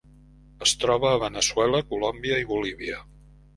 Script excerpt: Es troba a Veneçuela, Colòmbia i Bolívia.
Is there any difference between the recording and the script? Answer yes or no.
no